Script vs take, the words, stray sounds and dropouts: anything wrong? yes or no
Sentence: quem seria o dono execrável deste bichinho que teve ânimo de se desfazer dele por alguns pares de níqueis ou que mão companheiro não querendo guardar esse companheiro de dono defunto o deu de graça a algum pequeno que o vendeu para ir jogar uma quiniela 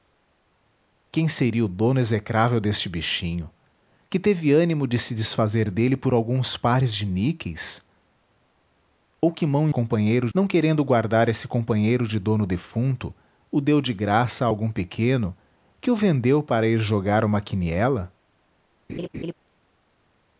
yes